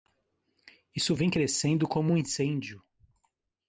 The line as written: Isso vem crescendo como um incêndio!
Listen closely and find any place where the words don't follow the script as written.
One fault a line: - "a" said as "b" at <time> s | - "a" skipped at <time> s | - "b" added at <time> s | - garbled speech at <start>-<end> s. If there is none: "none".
none